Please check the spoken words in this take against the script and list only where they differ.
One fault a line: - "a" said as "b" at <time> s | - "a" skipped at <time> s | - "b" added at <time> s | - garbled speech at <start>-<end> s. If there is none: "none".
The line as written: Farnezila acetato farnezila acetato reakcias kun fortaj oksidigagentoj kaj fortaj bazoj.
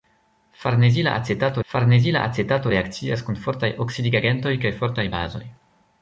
none